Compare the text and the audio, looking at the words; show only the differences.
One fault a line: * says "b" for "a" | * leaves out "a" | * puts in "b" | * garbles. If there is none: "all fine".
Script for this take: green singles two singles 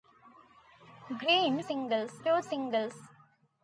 all fine